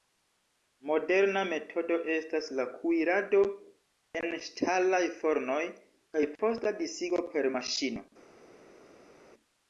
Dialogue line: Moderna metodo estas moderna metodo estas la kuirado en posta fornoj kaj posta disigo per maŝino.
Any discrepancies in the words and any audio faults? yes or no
yes